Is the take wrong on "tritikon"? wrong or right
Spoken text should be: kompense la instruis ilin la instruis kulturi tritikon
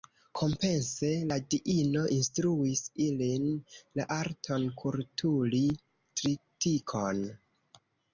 right